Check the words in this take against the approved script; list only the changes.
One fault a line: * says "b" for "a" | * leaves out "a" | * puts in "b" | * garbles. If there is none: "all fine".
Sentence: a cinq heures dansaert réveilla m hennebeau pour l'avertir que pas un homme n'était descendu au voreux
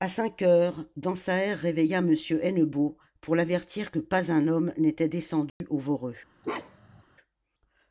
all fine